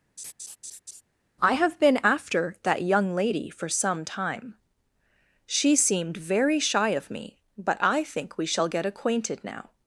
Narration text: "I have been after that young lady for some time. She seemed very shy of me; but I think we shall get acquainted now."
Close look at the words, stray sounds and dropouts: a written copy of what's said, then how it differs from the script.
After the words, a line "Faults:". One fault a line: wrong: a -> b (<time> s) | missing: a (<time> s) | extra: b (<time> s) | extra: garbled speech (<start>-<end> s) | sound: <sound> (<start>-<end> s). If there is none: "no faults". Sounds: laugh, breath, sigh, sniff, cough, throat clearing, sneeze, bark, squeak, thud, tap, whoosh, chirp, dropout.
"I have been after that young lady for some time. She seemed very shy of me; but I think we shall get acquainted now."
Faults:
sound: laugh (0.2-1.0 s)